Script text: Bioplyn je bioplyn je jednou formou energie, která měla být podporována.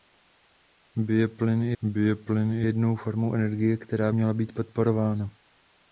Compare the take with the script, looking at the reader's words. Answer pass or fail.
pass